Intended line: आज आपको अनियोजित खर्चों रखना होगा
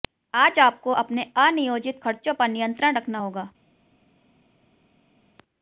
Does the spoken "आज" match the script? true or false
true